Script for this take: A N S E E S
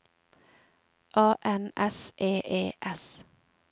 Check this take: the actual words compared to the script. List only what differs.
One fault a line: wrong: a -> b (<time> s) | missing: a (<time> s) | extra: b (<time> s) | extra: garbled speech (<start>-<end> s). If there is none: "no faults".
no faults